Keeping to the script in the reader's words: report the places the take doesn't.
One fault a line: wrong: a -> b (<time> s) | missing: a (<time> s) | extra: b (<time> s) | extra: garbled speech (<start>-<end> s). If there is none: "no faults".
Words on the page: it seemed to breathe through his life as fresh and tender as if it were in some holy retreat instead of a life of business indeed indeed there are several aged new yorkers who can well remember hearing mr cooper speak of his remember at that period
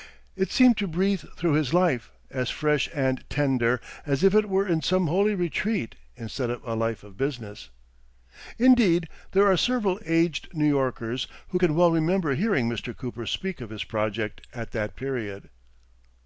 missing: indeed (9.1 s)
wrong: remember -> project (13.8 s)